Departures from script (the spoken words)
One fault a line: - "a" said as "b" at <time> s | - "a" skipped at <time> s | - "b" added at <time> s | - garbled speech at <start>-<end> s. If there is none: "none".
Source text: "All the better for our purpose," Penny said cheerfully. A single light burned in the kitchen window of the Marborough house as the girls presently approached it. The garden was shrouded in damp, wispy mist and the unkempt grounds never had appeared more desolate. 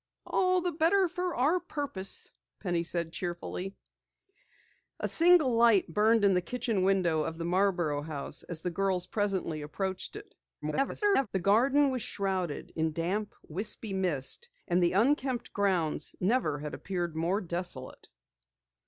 - garbled speech at 10.6-11.3 s